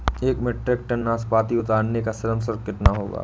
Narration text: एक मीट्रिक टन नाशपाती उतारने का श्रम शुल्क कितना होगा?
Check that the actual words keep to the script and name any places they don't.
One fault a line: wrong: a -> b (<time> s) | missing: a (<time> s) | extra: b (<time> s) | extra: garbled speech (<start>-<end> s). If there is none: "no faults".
no faults